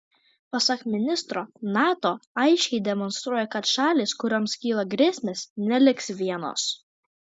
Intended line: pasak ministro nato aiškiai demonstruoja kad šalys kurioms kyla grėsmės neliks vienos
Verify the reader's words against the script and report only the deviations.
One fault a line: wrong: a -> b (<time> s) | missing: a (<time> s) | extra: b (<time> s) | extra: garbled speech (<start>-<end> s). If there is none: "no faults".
no faults